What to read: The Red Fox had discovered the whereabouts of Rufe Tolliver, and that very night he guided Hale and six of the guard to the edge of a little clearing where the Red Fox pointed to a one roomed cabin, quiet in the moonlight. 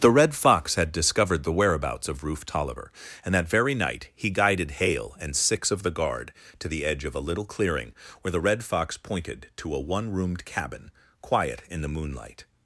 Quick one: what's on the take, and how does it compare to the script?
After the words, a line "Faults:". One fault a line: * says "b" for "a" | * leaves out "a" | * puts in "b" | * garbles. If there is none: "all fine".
The Red Fox had discovered the whereabouts of Rufe Tolliver, and that very night he guided Hale and six of the guard to the edge of a little clearing where the Red Fox pointed to a one roomed cabin, quiet in the moonlight.
Faults:
all fine